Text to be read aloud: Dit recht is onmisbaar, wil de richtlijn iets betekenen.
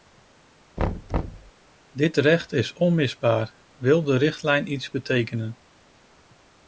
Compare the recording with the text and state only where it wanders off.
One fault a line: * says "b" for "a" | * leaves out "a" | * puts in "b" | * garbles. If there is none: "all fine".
all fine